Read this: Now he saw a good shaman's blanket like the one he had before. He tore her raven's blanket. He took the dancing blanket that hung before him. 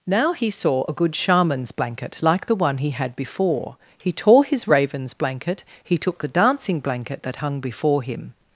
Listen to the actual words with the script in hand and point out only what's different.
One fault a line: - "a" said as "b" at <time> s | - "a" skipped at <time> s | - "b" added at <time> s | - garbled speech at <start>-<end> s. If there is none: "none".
- "her" said as "his" at 4.5 s